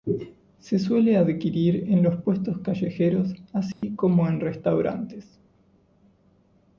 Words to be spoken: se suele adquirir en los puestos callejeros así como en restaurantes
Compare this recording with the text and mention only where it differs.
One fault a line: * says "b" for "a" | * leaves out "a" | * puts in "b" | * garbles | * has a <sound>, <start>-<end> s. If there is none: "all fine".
* has a dropout, 3.7-3.8 s